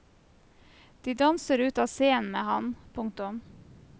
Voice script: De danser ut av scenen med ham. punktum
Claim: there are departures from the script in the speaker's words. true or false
false